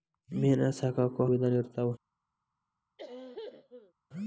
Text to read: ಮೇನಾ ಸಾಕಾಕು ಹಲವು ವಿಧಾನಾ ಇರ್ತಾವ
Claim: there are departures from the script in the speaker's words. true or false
true